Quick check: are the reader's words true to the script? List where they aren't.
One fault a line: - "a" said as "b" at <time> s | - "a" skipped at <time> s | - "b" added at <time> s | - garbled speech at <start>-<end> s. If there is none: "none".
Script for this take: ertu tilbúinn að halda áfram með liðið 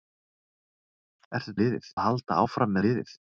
- "tilbúinn" said as "liðið" at 1.6 s
- "með" skipped at 2.8 s